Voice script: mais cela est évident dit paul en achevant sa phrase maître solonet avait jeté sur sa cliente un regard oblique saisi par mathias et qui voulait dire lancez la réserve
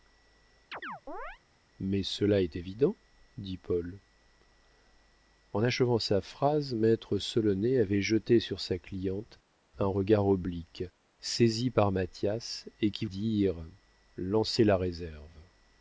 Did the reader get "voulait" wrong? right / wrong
wrong